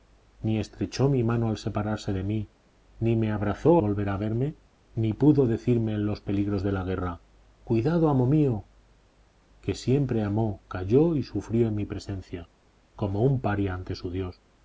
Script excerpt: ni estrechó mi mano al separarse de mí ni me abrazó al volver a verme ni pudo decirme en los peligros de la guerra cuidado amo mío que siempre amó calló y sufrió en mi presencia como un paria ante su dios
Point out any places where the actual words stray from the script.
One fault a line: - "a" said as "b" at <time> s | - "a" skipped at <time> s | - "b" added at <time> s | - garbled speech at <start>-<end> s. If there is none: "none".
- "al" skipped at 3.8 s